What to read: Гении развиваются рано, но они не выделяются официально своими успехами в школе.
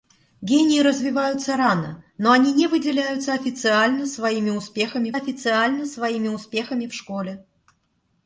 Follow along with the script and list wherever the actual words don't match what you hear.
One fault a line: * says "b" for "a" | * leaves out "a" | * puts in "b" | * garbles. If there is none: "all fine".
* puts in "официально своими успехами"